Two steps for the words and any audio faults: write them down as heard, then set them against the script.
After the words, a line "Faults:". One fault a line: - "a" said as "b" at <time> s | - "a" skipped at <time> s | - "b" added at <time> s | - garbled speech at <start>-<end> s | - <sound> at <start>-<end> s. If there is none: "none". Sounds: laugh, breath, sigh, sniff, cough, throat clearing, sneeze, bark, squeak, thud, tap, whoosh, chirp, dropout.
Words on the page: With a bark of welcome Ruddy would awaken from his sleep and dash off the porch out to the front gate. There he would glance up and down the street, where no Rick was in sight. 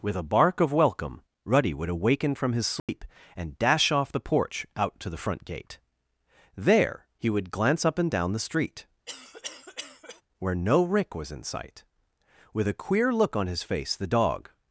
With a bark of welcome Ruddy would awaken from his sleep and dash off the porch out to the front gate. There he would glance up and down the street, where no Rick was in sight. With a queer look on his face, the dog
Faults:
- dropout at 2.8-2.9 s
- cough at 9.1-10.2 s
- "With a queer look on his face the dog" added at 12.5 s